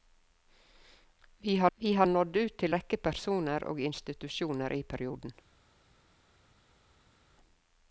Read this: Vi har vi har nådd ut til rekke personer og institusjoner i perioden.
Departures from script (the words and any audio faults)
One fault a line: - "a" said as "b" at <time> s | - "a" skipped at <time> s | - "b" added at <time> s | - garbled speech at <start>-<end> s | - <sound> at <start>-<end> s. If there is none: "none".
none